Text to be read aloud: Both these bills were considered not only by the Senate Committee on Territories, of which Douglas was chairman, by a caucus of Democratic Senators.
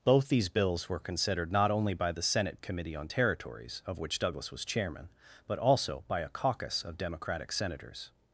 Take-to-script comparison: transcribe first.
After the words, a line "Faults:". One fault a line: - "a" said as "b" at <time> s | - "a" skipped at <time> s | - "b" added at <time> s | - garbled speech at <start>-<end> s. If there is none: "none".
Both these bills were considered not only by the Senate Committee on Territories, of which Douglas was chairman, but also by a caucus of Democratic Senators.
Faults:
- "but also" added at 5.5 s